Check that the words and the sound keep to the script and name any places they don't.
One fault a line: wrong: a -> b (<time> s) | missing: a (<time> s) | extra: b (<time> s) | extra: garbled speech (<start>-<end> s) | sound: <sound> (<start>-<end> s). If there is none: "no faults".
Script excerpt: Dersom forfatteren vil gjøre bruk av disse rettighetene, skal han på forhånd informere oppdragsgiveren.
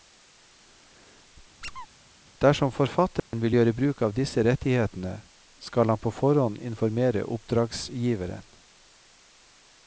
sound: squeak (1.6-1.9 s)
sound: dropout (3.2-3.3 s)